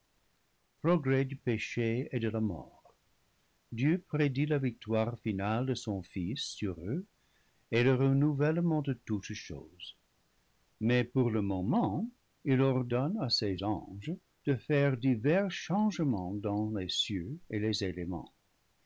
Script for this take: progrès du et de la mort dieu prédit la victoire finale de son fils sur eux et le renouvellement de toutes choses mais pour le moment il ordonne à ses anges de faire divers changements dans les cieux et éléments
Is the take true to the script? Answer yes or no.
no